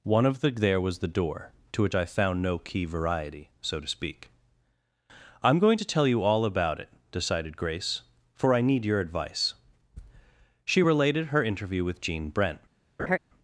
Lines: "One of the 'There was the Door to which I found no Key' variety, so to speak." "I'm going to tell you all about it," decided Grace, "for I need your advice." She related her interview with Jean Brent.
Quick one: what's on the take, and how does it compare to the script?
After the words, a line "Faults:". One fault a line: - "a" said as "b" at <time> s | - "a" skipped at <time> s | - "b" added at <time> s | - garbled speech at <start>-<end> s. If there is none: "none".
"One of the 'There was the Door to which I found no Key' variety, so to speak." "I'm going to tell you all about it," decided Grace, "for I need your advice." She related her interview with Jean Brent.
Faults:
none